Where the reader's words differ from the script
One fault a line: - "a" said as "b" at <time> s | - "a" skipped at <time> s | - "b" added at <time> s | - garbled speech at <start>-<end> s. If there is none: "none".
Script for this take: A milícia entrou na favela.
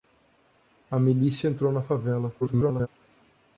- garbled speech at 2.4-2.9 s